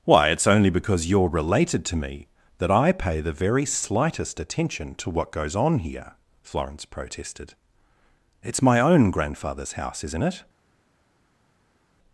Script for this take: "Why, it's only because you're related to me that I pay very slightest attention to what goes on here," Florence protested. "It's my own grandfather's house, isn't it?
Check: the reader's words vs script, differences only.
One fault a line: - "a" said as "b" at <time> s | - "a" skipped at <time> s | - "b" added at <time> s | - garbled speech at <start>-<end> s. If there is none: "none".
- "the" added at 3.2 s